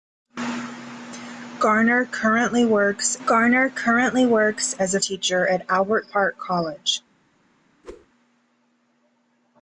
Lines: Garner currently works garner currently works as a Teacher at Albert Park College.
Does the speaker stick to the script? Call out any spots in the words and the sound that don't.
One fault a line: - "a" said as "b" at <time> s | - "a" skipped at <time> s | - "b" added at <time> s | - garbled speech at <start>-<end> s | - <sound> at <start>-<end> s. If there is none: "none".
- whoosh at 7.8-8.1 s